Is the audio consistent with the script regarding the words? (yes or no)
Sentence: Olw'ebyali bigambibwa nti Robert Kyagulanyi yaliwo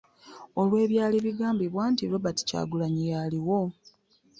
yes